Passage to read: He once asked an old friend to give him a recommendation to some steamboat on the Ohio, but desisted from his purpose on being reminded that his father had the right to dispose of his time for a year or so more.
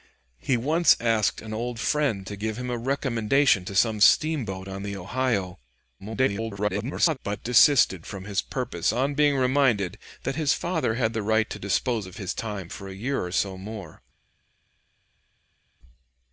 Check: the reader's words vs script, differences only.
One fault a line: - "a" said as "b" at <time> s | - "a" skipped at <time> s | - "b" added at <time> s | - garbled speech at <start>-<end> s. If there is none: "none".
- garbled speech at 6.0-7.2 s